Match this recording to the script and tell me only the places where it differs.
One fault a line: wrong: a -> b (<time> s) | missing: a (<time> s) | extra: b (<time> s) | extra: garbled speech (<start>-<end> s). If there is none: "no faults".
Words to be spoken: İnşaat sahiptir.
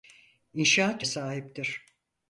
no faults